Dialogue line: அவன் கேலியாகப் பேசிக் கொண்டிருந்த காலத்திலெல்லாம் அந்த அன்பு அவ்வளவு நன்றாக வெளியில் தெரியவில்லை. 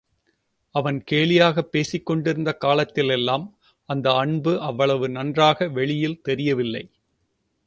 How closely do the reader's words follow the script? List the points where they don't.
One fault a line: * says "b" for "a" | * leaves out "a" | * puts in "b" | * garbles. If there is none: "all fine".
all fine